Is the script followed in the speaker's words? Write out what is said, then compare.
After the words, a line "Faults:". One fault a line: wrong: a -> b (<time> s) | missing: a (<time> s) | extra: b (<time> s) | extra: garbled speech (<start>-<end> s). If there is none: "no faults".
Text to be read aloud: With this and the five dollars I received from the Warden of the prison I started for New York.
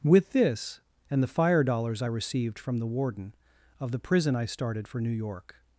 With this and the fire dollars I received from the Warden of the prison I started for New York.
Faults:
wrong: five -> fire (1.3 s)